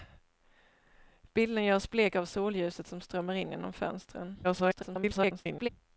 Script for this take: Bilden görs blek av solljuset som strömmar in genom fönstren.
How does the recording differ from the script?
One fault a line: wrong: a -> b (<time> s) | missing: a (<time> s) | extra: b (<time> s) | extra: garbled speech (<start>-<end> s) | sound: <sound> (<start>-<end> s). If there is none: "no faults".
extra: garbled speech (4.4-5.7 s)